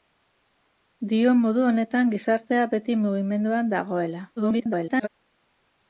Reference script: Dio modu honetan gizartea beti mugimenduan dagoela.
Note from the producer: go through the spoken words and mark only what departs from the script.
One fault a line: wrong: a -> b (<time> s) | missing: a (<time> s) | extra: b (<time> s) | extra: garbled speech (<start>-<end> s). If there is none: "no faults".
extra: garbled speech (4.4-5.1 s)